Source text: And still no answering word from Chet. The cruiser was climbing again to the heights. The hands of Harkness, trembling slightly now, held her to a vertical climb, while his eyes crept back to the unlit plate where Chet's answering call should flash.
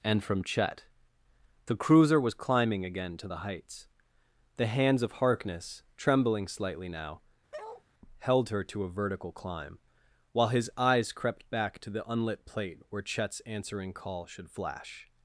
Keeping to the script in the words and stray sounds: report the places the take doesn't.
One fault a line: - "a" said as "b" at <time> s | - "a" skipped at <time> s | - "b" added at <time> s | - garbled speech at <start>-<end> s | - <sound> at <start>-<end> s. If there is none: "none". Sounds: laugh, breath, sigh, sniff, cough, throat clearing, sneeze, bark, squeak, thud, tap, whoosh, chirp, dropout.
- "still no answering word" skipped at 0.2 s
- bark at 7.5-7.8 s